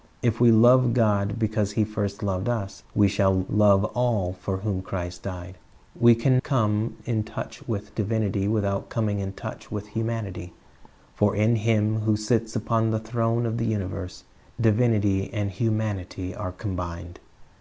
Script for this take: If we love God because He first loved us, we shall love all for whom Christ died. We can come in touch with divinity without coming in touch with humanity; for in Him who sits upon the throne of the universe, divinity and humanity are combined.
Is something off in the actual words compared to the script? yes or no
no